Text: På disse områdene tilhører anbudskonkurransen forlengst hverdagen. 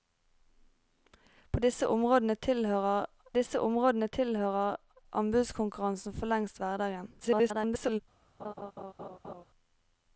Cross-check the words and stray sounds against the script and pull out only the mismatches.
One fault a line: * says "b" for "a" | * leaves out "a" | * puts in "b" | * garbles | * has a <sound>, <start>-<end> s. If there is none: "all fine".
* puts in "disse områdene tilhører"
* garbles
* has a laugh, 8.4-9.4 s